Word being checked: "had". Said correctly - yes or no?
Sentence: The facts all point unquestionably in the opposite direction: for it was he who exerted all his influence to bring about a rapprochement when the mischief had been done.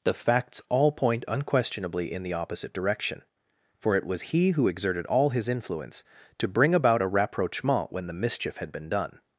yes